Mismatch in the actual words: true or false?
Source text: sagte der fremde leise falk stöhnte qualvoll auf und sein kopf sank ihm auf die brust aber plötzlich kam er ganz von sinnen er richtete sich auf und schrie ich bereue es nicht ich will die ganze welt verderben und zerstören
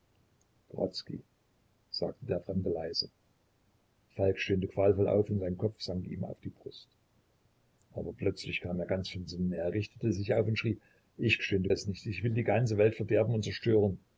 true